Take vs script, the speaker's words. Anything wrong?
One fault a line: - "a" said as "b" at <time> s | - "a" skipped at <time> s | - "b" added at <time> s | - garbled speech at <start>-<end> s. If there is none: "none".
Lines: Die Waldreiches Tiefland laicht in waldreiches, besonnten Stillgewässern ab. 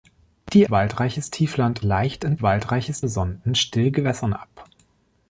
none